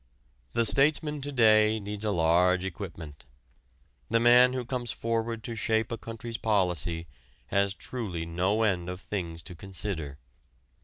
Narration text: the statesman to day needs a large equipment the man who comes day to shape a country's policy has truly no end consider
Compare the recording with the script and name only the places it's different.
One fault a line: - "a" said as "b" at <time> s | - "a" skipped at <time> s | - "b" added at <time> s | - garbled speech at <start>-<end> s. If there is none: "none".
- "day" said as "forward" at 4.9 s
- "of things to" added at 8.9 s